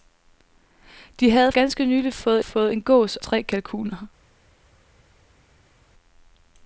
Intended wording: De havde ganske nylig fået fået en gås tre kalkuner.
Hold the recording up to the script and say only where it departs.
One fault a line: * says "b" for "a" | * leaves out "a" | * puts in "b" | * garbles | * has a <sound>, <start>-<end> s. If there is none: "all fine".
all fine